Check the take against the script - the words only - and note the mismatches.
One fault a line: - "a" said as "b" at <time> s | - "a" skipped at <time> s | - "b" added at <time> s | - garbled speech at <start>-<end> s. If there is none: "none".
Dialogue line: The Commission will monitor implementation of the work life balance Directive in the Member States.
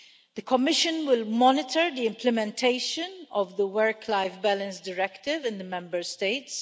- "the" added at 1.9 s